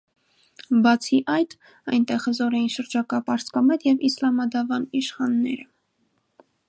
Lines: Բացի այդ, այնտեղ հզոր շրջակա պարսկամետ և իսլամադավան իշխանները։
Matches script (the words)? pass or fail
fail